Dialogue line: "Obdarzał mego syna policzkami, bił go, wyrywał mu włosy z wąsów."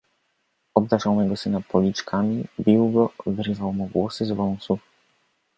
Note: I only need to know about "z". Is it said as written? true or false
true